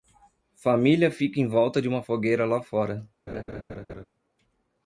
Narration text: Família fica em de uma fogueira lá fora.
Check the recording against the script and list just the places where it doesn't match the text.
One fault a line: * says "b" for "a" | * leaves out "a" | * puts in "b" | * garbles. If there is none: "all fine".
* puts in "volta"